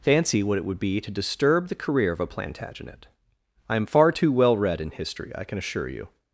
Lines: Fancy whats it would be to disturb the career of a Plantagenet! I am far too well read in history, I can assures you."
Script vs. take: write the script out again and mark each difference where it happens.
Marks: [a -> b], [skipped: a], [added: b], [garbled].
Fancy [whats -> what] it would be to disturb the career of a Plantagenet! I am far too well read in history, I can [assures -> assure] you."